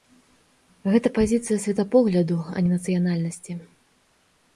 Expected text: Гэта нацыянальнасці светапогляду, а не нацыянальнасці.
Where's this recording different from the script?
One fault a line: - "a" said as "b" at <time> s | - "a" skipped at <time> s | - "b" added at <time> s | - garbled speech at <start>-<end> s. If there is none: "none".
- "нацыянальнасці" said as "пазіцыя" at 1.2 s